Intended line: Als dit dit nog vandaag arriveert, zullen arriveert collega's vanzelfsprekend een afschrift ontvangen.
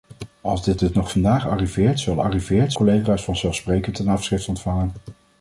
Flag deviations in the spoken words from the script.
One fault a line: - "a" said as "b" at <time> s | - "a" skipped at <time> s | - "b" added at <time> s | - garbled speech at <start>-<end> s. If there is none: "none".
none